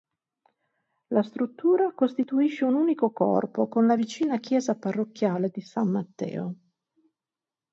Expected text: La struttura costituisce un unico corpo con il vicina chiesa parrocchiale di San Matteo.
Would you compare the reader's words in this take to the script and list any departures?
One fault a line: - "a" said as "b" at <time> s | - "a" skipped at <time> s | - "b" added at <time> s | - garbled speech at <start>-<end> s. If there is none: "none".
- "il" said as "la" at 3.9 s